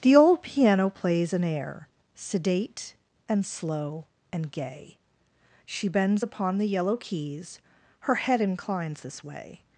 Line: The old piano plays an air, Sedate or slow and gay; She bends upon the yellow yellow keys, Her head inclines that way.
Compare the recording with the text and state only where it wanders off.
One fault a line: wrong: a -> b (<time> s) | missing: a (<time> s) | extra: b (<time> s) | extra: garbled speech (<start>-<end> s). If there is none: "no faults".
wrong: or -> and (3.3 s)
missing: yellow (6.9 s)
wrong: that -> this (9.0 s)